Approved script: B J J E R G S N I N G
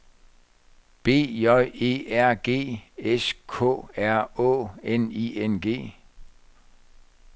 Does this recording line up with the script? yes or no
no